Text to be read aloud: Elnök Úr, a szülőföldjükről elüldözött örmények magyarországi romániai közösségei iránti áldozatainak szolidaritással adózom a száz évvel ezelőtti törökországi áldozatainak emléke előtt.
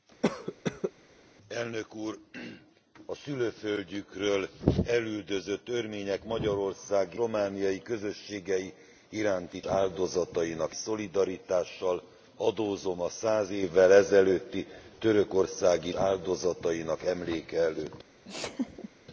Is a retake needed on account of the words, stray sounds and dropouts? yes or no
yes